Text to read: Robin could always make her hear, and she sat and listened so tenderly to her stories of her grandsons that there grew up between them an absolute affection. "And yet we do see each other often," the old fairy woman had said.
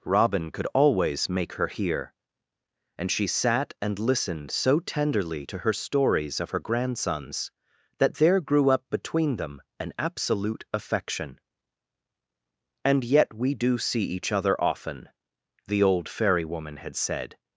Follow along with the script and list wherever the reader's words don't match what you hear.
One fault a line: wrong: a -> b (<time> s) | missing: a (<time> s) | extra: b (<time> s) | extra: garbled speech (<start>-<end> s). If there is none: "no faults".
no faults